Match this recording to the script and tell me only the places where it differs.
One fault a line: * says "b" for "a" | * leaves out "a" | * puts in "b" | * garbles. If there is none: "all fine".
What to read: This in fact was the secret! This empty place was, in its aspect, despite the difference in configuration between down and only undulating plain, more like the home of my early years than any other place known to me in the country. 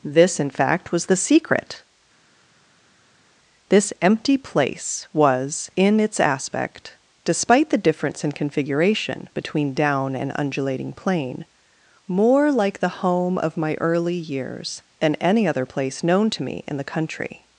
* leaves out "only"